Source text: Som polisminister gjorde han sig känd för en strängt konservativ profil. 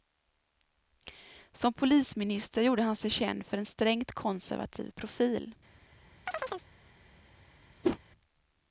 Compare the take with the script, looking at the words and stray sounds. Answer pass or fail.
fail